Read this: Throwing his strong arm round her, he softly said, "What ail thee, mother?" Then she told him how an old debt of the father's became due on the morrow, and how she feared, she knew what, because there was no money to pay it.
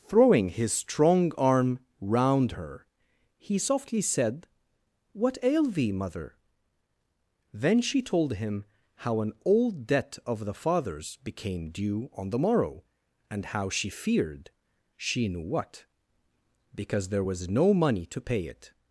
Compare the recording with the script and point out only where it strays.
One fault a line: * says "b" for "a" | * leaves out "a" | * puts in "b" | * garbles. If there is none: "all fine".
all fine